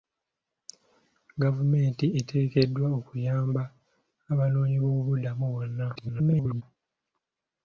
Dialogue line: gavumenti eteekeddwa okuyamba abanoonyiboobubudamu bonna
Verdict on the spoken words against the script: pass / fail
fail